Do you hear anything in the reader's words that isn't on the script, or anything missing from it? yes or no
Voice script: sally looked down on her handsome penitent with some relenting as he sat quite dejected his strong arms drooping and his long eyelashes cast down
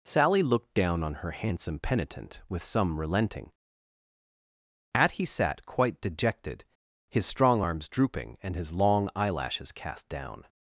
yes